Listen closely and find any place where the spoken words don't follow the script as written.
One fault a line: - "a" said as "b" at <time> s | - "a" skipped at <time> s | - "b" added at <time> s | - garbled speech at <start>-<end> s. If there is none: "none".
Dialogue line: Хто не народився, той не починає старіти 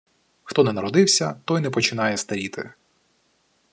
none